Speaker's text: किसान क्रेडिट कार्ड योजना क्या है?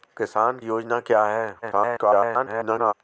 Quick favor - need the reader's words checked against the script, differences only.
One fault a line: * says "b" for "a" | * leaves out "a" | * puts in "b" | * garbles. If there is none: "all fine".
* leaves out "क्रेडिट कार्ड"
* garbles